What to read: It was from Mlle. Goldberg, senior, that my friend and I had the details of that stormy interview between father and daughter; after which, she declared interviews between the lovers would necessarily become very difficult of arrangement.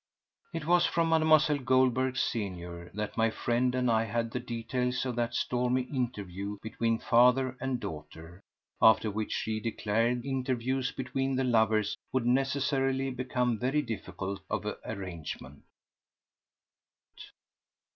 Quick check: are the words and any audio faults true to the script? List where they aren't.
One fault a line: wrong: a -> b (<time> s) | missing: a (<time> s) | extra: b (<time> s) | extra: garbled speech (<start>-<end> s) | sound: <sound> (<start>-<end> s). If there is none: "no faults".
no faults